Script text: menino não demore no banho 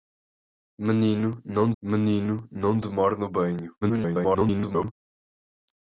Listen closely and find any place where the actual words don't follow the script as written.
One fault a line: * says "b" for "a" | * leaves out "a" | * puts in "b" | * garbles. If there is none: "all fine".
* puts in "menino não"
* garbles